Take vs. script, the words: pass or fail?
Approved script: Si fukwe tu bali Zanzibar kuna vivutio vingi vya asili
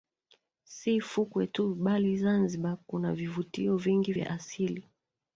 pass